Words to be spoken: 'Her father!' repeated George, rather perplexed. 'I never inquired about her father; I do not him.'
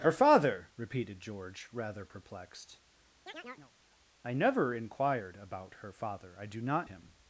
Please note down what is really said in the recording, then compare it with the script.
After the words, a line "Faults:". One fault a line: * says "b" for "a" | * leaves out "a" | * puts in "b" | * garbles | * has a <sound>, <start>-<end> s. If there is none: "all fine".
'Her father!' repeated George, rather perplexed. 'I never inquired about her father; I do not him.'
Faults:
* has a chirp, 3.3-3.7 s